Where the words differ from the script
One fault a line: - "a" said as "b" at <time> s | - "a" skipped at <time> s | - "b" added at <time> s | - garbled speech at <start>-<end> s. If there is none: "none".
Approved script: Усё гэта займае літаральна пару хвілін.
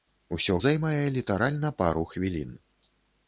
- "гэта" skipped at 0.6 s